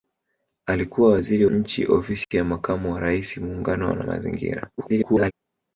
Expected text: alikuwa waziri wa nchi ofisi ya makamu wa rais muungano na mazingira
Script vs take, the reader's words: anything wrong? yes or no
yes